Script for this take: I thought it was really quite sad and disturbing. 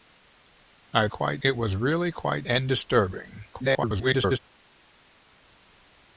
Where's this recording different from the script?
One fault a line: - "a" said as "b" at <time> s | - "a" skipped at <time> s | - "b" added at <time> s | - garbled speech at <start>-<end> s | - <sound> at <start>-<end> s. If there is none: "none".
- "thought" said as "quite" at 1.1 s
- "sad" skipped at 2.5 s
- garbled speech at 3.5-4.4 s